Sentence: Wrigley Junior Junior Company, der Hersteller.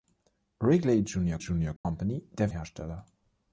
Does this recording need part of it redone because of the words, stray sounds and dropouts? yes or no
yes